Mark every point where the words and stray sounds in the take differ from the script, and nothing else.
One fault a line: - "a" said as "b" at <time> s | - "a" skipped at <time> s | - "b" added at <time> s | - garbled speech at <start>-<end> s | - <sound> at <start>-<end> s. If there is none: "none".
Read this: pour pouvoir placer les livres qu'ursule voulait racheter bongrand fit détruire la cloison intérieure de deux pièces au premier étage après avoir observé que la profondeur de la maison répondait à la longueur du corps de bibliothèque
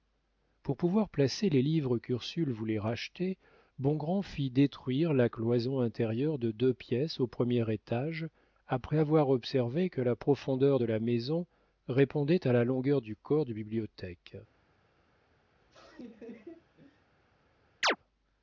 - laugh at 15.5-17.1 s
- chirp at 17.8-18.0 s